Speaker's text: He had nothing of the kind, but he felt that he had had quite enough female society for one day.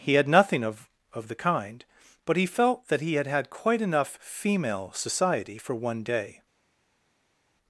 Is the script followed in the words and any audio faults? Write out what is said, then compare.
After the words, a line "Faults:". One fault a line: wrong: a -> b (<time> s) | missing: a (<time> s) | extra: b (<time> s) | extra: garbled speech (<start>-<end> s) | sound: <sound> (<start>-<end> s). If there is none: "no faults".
He had nothing of of the kind, but he felt that he had had quite enough female society for one day.
Faults:
extra: of (1.1 s)